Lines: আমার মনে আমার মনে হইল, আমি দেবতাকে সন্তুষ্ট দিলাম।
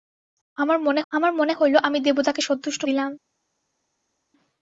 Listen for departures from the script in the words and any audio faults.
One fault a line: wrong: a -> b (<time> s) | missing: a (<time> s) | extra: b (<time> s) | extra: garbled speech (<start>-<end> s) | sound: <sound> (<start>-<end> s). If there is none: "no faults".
no faults